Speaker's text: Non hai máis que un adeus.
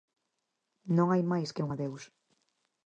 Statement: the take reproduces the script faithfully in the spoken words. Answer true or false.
true